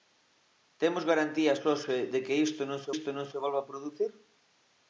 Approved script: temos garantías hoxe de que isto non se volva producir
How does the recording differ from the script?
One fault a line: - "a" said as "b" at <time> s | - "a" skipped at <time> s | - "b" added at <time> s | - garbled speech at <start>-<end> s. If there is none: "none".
- "isto non se" added at 2.9 s